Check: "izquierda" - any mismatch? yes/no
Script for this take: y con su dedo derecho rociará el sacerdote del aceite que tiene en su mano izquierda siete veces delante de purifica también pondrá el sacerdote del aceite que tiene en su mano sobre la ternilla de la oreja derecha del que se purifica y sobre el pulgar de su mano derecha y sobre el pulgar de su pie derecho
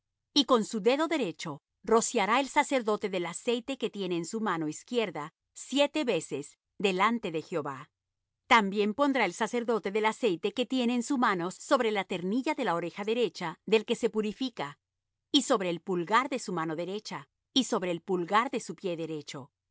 no